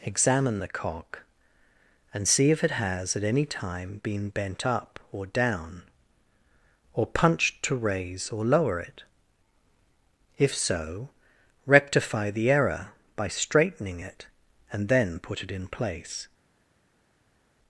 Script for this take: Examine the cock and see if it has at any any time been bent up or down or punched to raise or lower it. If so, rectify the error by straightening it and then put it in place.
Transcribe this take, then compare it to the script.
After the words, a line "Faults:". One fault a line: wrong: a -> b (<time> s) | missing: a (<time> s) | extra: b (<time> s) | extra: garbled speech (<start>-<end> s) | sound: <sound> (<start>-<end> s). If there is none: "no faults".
Examine the cock and see if it has at any time been bent up or down or punched to raise or lower it. If so, rectify the error by straightening it and then put it in place.
Faults:
missing: any (3.4 s)